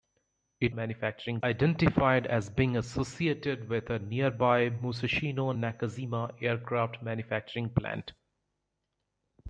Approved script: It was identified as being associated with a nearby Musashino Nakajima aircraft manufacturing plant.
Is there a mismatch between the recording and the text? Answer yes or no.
yes